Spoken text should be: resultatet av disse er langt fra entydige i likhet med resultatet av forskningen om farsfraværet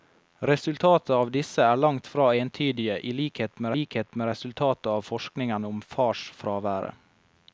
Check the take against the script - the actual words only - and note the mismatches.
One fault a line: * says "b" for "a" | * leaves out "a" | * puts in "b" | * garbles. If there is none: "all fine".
* puts in "likhet med"